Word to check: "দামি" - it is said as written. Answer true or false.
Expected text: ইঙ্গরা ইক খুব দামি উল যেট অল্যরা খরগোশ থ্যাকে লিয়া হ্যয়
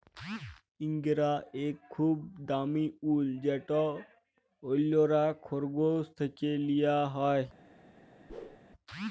true